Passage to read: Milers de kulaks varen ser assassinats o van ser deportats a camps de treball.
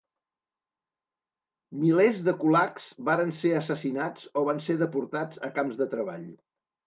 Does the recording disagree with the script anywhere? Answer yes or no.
no